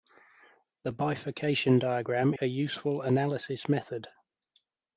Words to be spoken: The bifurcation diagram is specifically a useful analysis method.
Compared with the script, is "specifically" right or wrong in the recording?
wrong